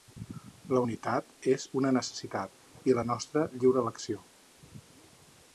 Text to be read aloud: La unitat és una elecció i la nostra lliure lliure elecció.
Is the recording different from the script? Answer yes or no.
yes